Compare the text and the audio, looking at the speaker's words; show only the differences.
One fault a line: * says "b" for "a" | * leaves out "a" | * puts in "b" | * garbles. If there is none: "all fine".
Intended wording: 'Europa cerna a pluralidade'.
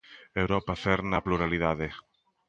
all fine